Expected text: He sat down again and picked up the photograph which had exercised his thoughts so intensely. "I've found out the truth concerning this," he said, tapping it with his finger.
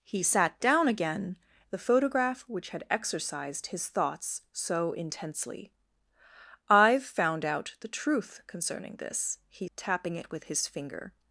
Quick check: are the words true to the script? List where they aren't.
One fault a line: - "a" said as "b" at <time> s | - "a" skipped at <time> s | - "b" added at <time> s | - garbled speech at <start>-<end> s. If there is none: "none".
- "and picked up" skipped at 1.4 s
- "said" skipped at 9.7 s